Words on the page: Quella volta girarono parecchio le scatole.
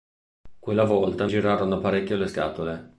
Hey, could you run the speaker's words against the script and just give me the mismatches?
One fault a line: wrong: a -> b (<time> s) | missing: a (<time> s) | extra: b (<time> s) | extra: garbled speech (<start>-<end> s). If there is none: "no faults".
no faults